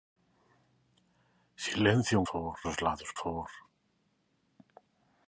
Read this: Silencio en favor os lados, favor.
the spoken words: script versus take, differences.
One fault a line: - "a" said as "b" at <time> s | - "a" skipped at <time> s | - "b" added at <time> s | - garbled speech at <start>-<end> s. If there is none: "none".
none